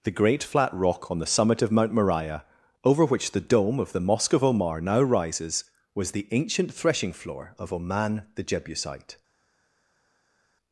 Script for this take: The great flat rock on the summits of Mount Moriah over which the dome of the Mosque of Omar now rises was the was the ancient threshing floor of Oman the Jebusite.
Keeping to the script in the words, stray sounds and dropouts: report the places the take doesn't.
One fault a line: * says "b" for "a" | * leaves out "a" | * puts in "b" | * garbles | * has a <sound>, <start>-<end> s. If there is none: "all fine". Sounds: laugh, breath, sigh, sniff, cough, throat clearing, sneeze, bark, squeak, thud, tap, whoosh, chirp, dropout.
* says "summit" for "summits"
* leaves out "was the"